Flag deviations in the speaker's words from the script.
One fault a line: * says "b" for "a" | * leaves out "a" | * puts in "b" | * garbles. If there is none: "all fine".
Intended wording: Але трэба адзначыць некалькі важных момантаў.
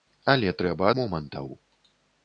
* leaves out "адзначыць некалькі важных"